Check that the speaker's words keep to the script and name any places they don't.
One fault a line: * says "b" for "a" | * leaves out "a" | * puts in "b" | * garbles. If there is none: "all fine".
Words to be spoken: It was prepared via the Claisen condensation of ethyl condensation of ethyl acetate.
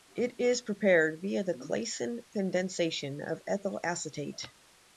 * says "is" for "was"
* leaves out "condensation of ethyl"